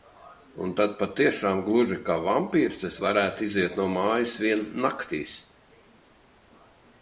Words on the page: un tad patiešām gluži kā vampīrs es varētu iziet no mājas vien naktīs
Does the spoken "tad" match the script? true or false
true